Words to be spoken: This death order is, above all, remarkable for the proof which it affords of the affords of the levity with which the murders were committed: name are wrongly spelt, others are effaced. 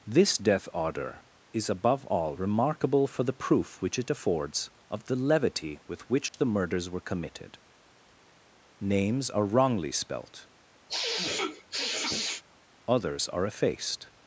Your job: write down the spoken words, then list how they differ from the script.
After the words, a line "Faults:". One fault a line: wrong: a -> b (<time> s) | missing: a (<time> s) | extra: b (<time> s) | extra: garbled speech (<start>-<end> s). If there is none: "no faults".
This death order is, above all, remarkable for the proof which it affords of the levity with which the murders were committed: names are wrongly spelt, others are effaced.
Faults:
missing: affords of the (5.2 s)
wrong: name -> names (8.8 s)